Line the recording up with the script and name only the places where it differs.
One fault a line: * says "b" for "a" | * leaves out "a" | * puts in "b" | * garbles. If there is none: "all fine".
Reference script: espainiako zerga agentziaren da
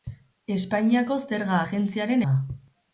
all fine